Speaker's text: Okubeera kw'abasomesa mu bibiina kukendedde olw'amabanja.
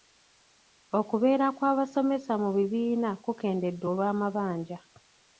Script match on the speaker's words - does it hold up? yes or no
yes